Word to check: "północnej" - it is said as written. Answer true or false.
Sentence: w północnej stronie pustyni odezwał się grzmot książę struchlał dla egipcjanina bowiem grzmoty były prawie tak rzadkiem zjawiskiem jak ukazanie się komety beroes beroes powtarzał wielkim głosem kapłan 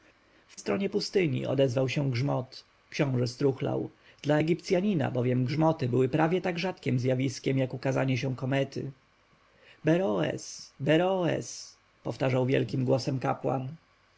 false